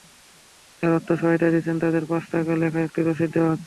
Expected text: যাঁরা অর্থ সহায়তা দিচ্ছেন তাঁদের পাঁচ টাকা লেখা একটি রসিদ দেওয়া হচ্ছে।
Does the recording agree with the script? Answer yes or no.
yes